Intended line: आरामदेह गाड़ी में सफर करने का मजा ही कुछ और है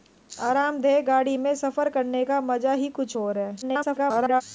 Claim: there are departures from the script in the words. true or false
true